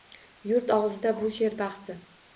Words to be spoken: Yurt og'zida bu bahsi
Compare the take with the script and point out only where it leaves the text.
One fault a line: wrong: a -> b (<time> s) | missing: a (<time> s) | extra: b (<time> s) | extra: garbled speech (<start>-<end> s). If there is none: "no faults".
extra: she'r (1.4 s)